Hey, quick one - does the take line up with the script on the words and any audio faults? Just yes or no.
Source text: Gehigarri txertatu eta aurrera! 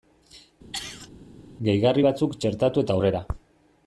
no